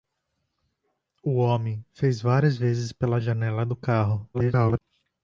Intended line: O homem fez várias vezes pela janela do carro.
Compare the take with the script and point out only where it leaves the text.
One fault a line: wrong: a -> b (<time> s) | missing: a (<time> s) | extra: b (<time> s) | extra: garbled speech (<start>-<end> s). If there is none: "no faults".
extra: garbled speech (4.3-4.8 s)